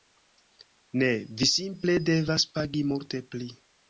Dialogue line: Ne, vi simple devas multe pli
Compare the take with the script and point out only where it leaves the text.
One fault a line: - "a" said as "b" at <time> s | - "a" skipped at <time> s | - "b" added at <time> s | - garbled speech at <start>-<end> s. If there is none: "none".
- "pagi" added at 2.6 s